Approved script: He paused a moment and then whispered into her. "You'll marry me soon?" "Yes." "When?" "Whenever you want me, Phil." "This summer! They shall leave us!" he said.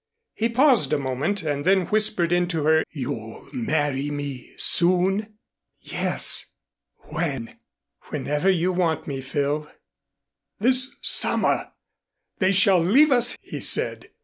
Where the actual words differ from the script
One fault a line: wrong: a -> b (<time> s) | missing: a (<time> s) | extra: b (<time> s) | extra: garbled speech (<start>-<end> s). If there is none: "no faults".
no faults